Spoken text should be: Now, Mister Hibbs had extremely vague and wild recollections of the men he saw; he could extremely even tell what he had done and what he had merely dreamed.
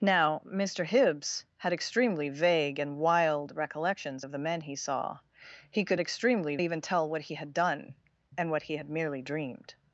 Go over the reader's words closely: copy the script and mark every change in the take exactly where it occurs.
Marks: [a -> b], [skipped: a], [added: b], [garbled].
Now, Mister Hibbs had extremely vague and wild recollections of the men he saw; he could extremely even tell what he had done and what he had merely dreamed.